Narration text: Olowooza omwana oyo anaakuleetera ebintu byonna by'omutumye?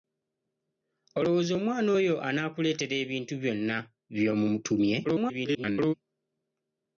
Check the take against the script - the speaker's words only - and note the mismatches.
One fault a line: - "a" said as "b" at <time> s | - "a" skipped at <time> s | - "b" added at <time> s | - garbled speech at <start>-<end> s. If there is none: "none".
- garbled speech at 5.0-5.9 s